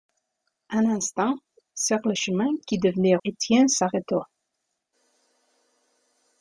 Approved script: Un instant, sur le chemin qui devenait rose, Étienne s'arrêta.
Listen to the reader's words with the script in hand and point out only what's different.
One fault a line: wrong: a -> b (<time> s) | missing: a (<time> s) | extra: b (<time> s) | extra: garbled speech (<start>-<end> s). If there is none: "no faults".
missing: rose (3.2 s)